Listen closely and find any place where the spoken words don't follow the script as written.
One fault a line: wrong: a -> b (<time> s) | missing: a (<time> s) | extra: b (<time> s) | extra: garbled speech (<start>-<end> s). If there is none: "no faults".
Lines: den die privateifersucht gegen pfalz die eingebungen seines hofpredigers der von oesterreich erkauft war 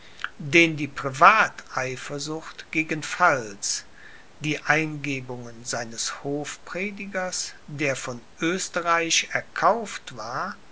no faults